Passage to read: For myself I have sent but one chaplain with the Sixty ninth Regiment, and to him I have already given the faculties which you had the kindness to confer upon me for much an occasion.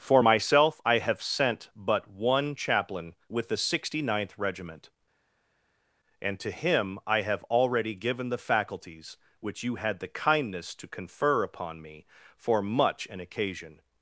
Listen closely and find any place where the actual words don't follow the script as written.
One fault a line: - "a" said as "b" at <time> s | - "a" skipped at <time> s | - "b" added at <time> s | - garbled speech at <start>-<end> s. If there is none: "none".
none